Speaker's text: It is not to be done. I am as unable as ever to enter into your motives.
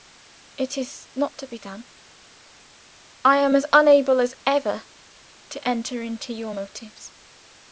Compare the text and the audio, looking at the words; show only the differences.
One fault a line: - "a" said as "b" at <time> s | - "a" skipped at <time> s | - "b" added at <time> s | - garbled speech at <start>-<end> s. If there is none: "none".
none